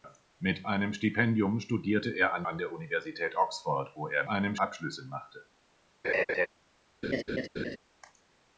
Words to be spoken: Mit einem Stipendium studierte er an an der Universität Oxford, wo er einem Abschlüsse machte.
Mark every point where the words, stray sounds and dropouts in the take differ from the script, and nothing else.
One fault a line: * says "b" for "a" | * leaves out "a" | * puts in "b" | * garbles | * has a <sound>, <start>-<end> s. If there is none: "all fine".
* has a laugh, 6.0-6.5 s
* has a laugh, 7.0-7.8 s